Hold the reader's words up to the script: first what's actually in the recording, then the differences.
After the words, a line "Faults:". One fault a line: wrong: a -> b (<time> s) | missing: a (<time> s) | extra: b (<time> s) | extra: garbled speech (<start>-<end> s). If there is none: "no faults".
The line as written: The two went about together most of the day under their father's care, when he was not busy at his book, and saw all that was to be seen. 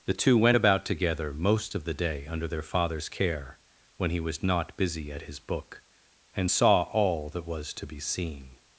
The two went about together most of the day under their father's care, when he was not busy at his book, and saw all that was to be seen.
Faults:
no faults